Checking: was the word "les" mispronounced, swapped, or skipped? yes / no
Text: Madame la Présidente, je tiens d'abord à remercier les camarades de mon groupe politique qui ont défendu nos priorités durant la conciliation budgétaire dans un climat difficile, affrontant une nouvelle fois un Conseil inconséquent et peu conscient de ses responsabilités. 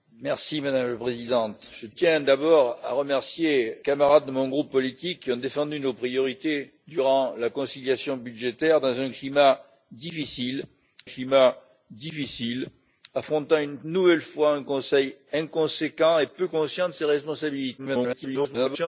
yes